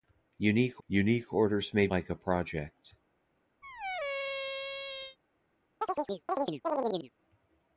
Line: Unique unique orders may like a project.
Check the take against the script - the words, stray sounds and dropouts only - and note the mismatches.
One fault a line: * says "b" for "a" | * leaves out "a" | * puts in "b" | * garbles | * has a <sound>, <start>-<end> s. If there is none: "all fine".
* has a squeak, 3.6-5.2 s
* has a chirp, 5.8-7.1 s